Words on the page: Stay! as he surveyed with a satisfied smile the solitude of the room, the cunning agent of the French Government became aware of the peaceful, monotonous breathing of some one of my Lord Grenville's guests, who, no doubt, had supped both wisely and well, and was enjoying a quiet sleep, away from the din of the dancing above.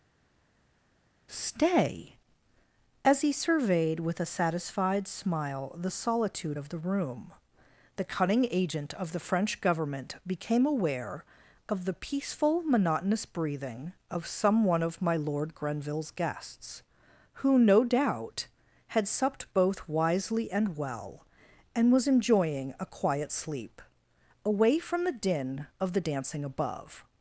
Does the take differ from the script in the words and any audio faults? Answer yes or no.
no